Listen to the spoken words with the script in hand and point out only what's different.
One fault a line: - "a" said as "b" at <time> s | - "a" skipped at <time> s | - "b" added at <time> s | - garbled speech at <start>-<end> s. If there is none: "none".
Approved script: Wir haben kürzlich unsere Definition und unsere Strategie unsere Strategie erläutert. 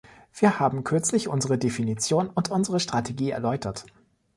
- "unsere Strategie" skipped at 3.3 s